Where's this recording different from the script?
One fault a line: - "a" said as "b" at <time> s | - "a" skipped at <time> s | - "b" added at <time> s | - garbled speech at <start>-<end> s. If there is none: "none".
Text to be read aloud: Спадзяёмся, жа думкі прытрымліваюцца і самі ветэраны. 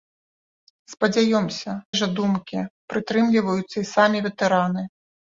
none